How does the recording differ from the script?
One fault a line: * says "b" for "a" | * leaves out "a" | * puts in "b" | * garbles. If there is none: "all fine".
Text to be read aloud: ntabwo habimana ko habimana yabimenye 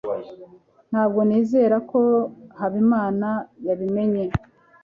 * says "nizera" for "habimana"